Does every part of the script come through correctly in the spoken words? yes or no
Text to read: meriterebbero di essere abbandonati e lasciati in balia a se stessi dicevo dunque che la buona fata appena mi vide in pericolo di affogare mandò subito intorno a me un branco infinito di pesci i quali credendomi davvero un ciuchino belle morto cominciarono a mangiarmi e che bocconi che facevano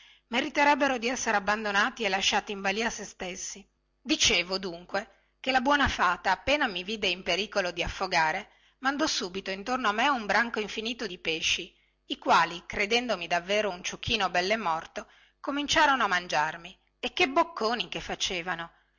yes